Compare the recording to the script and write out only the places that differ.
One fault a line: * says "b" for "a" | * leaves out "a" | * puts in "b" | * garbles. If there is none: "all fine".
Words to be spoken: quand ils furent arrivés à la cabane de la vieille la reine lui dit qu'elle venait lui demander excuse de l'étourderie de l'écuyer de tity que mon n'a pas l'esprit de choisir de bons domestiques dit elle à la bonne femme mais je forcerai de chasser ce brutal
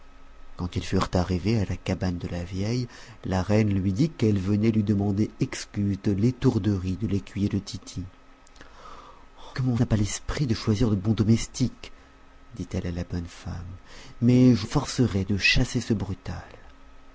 all fine